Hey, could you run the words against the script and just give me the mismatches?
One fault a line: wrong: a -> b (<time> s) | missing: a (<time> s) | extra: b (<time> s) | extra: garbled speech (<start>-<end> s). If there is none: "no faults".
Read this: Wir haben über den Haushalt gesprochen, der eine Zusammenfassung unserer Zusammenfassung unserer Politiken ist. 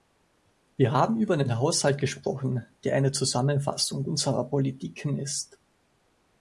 missing: Zusammenfassung unserer (4.4 s)